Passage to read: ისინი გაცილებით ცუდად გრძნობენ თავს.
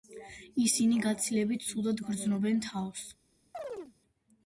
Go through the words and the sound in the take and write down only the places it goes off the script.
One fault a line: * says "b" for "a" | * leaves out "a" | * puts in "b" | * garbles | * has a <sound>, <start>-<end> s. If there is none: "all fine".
* has a chirp, 3.5-3.9 s